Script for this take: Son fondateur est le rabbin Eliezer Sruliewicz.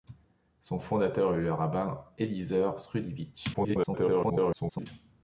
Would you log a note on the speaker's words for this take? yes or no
yes